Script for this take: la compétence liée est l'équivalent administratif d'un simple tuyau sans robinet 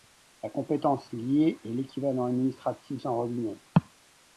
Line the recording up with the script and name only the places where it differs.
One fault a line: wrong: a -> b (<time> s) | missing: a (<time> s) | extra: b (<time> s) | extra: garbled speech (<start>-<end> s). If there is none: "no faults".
missing: d'un simple tuyau (3.0 s)